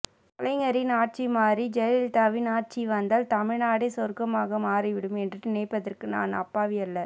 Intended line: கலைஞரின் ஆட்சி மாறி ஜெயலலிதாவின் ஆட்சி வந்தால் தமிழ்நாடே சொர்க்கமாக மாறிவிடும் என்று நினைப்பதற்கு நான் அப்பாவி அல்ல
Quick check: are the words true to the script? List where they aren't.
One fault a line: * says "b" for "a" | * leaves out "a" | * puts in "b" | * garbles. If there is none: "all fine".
all fine